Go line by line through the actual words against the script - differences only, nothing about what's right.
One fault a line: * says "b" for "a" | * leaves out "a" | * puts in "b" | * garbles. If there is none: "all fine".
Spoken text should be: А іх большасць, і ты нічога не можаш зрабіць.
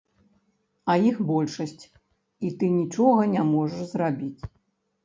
all fine